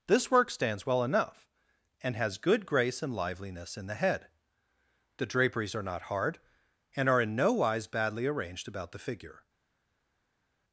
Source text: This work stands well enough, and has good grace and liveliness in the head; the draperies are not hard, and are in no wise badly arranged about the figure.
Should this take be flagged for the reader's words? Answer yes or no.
no